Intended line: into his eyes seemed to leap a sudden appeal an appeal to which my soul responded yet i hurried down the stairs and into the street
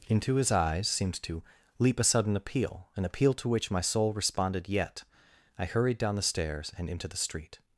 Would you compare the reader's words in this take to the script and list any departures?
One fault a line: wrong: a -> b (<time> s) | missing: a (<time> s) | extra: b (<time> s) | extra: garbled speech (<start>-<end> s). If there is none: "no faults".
no faults